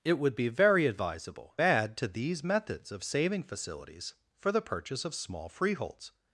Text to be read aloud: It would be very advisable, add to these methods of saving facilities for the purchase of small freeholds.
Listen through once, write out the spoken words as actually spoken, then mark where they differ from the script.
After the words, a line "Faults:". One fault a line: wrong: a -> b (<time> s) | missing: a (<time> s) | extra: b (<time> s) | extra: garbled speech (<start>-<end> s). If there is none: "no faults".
It would be very advisable, add to these methods of saving facilities for the purchase of small freeholds.
Faults:
no faults